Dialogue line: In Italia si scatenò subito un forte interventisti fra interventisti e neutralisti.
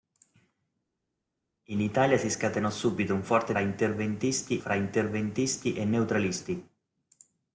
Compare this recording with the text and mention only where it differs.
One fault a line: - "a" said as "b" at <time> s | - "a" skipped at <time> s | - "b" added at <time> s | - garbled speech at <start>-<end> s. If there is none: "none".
none